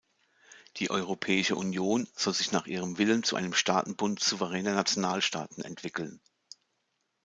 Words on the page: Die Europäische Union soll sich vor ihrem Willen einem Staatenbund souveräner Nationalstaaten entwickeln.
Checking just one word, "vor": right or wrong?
wrong